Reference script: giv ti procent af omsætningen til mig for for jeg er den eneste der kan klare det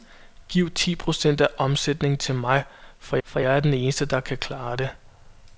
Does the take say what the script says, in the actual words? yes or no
yes